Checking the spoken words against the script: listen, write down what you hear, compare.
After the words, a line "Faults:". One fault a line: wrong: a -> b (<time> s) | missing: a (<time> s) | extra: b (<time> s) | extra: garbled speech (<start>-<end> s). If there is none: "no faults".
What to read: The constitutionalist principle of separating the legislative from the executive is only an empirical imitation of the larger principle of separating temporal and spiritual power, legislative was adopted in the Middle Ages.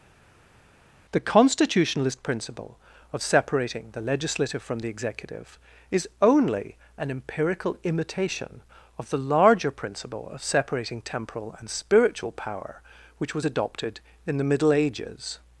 The constitutionalist principle of separating the legislative from the executive is only an empirical imitation of the larger principle of separating temporal and spiritual power, which was adopted in the Middle Ages.
Faults:
wrong: legislative -> which (13.2 s)